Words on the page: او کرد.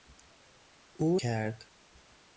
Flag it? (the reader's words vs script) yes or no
no